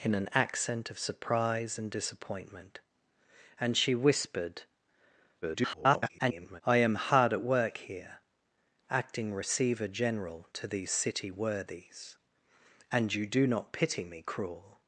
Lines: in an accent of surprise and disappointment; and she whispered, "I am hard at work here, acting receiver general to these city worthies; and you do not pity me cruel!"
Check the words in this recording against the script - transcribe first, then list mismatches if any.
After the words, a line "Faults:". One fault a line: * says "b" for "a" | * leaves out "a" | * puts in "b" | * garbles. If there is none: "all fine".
in an accent of surprise and disappointment; and she whispered, [garbled] "I am hard at work here, acting receiver general to these city worthies; and you do not pity me cruel!"
Faults:
* garbles